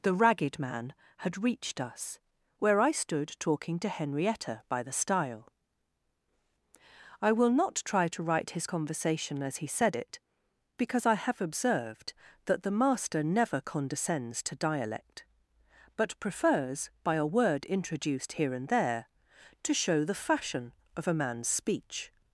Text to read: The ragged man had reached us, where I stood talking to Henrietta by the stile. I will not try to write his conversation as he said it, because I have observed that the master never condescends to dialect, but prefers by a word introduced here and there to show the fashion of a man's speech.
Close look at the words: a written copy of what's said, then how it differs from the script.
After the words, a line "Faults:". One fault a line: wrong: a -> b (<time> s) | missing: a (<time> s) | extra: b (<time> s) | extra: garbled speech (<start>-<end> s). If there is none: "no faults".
The ragged man had reached us, where I stood talking to Henrietta by the stile. I will not try to write his conversation as he said it, because I have observed that the master never condescends to dialect, but prefers by a word introduced here and there to show the fashion of a man's speech.
Faults:
no faults